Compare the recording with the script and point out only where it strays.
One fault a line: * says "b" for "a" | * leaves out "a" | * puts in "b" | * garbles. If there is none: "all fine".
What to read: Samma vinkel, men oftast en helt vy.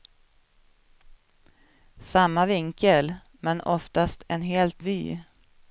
all fine